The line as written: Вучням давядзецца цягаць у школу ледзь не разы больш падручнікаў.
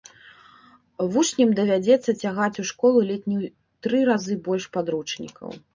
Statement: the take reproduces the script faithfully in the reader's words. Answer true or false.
false